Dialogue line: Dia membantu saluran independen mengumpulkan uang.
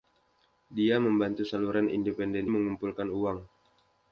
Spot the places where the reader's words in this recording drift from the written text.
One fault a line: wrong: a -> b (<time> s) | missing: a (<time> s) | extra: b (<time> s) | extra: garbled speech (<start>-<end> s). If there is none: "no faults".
no faults